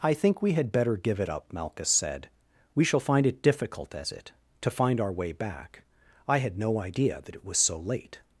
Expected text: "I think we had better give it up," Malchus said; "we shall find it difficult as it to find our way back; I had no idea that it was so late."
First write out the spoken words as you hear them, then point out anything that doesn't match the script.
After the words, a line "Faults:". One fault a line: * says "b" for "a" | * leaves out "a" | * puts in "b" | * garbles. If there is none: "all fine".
"I think we had better give it up," Malchus said; "we shall find it difficult as it to find our way back; I had no idea that it was so late."
Faults:
all fine